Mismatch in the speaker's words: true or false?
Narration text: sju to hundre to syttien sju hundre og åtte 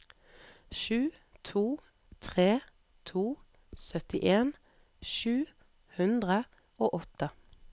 true